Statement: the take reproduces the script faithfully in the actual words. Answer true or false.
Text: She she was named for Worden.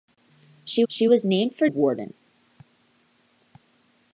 true